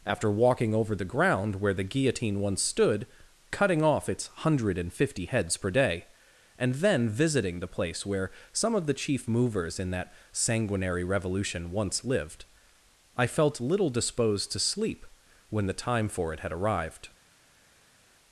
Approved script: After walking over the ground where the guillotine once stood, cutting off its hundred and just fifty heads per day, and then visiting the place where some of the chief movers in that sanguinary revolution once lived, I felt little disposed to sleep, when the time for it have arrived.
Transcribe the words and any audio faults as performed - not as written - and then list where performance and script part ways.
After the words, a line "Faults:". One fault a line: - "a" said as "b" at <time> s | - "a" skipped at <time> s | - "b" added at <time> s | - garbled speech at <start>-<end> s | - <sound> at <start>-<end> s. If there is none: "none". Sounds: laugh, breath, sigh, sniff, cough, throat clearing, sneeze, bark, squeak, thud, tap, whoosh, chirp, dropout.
After walking over the ground where the guillotine once stood, cutting off its hundred and fifty heads per day, and then visiting the place where some of the chief movers in that sanguinary revolution once lived, I felt little disposed to sleep, when the time for it had arrived.
Faults:
- "just" skipped at 4.9 s
- "have" said as "had" at 16.4 s